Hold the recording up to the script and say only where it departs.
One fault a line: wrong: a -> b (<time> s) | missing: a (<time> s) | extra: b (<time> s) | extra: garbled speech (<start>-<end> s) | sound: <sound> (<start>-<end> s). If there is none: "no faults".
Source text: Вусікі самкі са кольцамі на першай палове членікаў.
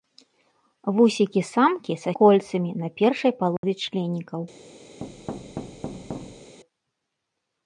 sound: dropout (3.6-3.6 s)
sound: thud (5.0-6.6 s)